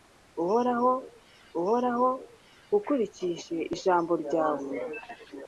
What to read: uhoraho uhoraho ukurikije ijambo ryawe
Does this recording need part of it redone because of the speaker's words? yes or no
no